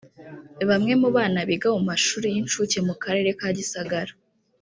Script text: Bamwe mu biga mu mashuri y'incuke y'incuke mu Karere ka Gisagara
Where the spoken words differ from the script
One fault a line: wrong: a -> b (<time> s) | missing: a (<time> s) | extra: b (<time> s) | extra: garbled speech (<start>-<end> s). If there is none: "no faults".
extra: bana (1.1 s)
missing: y'incuke (2.8 s)